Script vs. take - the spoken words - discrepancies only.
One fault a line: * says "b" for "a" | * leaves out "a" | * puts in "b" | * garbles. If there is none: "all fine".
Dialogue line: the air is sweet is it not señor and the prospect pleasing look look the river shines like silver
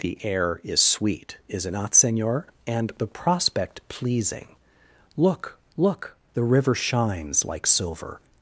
all fine